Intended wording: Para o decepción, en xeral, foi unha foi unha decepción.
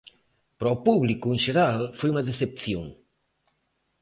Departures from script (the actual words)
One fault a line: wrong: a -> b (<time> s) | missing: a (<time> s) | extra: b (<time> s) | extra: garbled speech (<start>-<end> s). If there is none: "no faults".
wrong: decepción -> público (0.9 s)
missing: foi unha (2.2 s)